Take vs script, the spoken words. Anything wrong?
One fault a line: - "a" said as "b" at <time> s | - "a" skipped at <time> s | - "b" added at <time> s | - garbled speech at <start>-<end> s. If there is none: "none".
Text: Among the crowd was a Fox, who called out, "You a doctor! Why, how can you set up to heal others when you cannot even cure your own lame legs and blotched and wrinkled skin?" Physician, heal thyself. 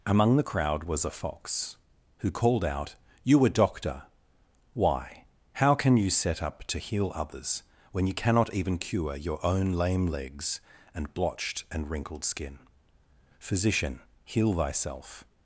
none